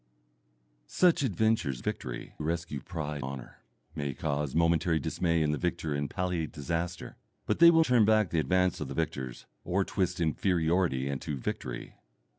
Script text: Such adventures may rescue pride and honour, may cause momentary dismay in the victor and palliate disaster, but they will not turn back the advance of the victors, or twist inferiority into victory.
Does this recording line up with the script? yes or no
no